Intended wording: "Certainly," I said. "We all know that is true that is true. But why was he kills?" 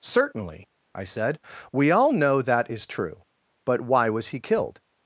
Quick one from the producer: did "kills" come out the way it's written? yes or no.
no